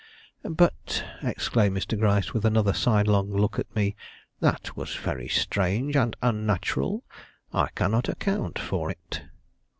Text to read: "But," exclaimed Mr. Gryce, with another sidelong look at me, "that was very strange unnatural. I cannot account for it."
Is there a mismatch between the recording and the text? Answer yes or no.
yes